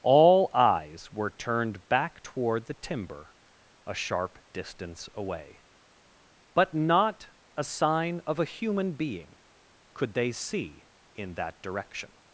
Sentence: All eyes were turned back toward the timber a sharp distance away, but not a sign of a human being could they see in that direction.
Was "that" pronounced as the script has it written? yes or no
yes